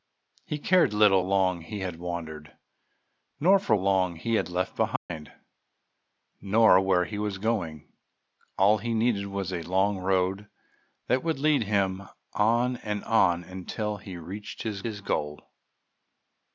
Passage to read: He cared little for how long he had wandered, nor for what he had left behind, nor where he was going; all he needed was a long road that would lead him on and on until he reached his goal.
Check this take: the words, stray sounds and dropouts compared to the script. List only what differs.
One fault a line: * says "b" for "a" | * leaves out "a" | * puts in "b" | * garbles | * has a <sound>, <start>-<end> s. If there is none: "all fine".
* leaves out "for how"
* says "long" for "what"
* has a dropout, 5.0-5.1 s
* puts in "his"